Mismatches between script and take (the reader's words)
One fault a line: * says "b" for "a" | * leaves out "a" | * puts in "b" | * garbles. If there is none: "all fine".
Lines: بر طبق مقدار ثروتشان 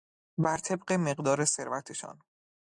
all fine